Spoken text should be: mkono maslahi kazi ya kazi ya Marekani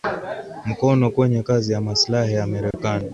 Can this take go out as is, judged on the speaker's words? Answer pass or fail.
fail